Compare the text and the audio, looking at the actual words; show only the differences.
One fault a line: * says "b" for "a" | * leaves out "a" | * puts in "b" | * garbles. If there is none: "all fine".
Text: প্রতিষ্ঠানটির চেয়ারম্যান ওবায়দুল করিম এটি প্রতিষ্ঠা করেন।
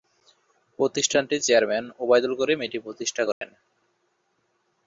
all fine